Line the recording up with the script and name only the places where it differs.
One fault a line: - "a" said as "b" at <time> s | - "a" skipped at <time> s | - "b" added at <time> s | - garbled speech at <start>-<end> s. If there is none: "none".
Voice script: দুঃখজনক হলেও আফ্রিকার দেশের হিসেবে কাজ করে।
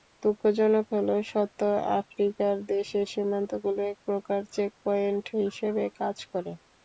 - "সত্য" added at 1.2 s
- "সীমান্তগুলো একপ্রকার চেকপয়েন্ট" added at 3.1 s